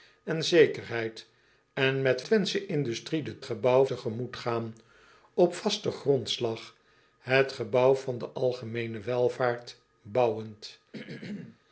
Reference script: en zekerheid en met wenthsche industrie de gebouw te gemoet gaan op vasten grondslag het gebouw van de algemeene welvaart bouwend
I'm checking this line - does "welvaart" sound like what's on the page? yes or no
yes